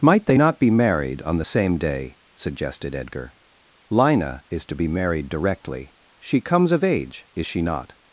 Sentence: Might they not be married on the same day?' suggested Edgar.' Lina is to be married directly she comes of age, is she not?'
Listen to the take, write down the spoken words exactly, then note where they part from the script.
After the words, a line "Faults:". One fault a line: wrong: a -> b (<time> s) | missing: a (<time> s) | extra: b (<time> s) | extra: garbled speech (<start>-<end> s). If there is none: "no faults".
Might they not be married on the same day?' suggested Edgar.' Lina is to be married directly she comes of age, is she not?'
Faults:
no faults